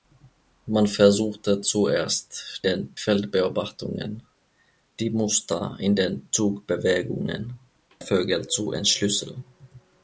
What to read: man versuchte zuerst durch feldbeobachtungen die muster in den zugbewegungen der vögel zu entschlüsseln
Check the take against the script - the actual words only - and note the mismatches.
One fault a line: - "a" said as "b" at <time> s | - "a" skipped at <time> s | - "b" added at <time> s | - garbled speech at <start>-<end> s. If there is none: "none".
- "durch" said as "den" at 2.6 s
- "der" skipped at 7.6 s